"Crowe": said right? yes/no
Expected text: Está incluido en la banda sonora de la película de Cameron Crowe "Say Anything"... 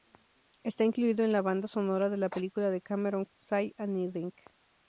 no